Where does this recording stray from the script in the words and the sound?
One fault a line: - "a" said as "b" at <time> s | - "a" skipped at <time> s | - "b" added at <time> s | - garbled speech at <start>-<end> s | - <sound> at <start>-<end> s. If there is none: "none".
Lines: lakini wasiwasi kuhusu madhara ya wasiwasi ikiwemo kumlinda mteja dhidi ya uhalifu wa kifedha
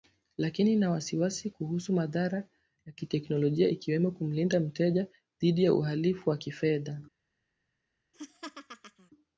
- "ina" added at 0.7 s
- "wasiwasi" said as "kiteknolojia" at 2.9 s
- laugh at 8.1-9.1 s